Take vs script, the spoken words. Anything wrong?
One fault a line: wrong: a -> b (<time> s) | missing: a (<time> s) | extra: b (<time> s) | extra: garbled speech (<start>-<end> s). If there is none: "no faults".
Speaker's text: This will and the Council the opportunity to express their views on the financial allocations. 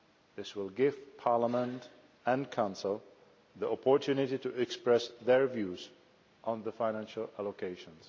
extra: give Parliament (0.7 s)